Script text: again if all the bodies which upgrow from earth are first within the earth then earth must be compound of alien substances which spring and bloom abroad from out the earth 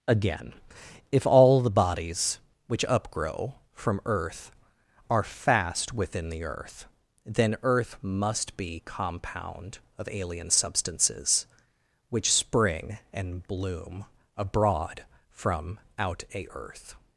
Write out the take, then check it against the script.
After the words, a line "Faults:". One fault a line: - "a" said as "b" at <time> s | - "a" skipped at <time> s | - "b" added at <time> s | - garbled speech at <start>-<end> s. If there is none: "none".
again if all the bodies which upgrow from earth are fast within the earth then earth must be compound of alien substances which spring and bloom abroad from out a earth
Faults:
- "first" said as "fast" at 5.2 s
- "the" said as "a" at 16.3 s